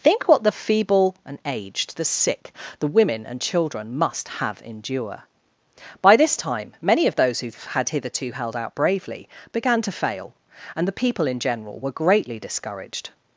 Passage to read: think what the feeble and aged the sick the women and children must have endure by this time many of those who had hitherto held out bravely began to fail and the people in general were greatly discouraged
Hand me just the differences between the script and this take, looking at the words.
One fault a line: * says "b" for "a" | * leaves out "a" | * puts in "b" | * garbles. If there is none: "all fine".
all fine